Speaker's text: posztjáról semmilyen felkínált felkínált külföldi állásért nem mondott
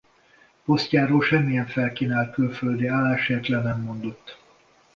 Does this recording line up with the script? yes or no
no